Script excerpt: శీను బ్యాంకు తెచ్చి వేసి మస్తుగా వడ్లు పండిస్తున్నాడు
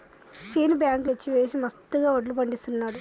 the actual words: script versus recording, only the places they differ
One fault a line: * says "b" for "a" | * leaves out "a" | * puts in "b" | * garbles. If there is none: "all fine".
all fine